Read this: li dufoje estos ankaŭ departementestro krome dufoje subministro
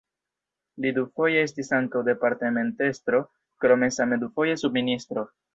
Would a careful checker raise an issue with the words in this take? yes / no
yes